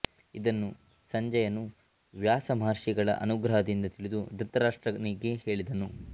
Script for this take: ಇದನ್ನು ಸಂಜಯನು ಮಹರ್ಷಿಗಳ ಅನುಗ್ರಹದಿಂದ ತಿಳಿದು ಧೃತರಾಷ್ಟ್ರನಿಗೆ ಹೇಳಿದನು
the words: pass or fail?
fail